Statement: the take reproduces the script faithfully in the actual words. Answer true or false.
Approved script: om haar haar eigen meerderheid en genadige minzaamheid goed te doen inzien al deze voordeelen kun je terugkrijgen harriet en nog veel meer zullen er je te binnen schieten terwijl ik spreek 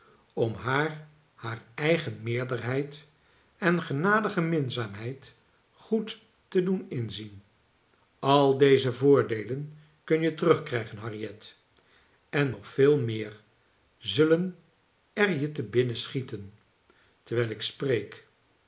true